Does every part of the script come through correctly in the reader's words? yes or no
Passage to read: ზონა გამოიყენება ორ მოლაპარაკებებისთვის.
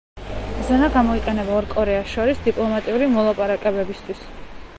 no